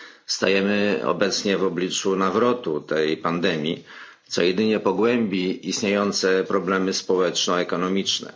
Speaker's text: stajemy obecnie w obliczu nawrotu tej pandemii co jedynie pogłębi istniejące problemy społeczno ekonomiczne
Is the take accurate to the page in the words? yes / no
yes